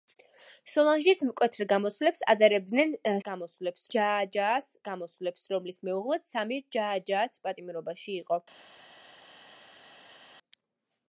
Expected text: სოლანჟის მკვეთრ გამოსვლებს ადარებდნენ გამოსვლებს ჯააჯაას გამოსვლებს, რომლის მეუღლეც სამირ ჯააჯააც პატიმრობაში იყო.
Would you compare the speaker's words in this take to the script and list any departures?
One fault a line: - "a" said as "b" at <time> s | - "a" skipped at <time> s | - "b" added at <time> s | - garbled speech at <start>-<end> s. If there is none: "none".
none